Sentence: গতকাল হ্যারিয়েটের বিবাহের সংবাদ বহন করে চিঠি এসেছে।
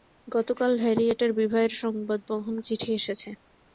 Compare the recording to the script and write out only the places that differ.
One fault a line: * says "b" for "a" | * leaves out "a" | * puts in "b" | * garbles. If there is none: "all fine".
* leaves out "করে"